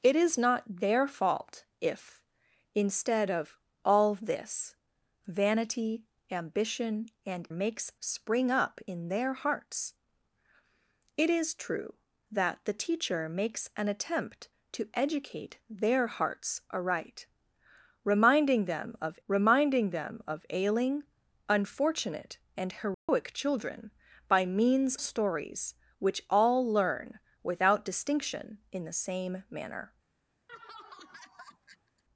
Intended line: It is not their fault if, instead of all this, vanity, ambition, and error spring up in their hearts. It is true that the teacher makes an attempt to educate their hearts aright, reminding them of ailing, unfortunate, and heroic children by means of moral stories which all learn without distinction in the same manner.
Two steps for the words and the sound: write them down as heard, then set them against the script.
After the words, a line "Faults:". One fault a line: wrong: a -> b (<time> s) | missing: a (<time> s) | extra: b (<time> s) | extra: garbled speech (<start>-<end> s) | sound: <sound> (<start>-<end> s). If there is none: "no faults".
It is not their fault if, instead of all this, vanity, ambition, and makes spring up in their hearts. It is true that the teacher makes an attempt to educate their hearts aright, reminding them of reminding them of ailing, unfortunate, and heroic children by means stories which all learn without distinction in the same manner.
Faults:
wrong: error -> makes (7.5 s)
extra: reminding them of (19.3 s)
sound: dropout (22.9-23.1 s)
missing: of moral (24.9 s)
sound: laugh (30.5-32.0 s)